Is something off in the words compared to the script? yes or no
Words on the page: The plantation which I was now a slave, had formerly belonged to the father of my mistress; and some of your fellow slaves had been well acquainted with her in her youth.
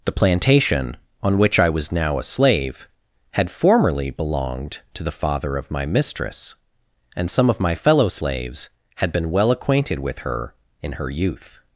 yes